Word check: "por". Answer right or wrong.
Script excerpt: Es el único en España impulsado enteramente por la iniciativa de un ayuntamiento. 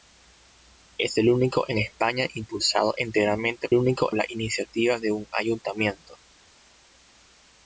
wrong